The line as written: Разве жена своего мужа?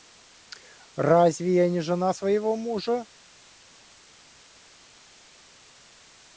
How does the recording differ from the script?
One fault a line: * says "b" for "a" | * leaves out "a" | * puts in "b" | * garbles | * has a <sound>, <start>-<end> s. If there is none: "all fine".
* puts in "я не"